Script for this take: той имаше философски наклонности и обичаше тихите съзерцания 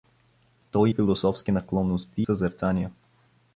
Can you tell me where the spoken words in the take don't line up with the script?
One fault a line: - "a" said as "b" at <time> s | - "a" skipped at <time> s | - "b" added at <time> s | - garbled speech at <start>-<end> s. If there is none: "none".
- "имаше" skipped at 0.9 s
- "и обичаше тихите" skipped at 2.2 s